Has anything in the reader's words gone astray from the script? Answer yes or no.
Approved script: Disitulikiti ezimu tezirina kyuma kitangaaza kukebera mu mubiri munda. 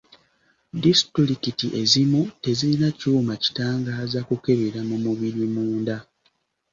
no